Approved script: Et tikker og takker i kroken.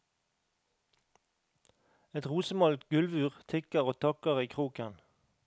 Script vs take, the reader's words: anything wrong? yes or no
yes